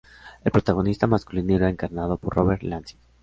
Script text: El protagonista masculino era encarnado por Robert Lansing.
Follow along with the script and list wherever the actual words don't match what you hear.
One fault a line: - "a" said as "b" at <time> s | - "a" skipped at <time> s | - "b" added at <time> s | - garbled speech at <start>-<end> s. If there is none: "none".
none